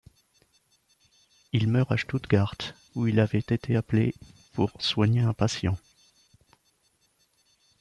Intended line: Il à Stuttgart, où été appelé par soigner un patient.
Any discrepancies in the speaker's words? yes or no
yes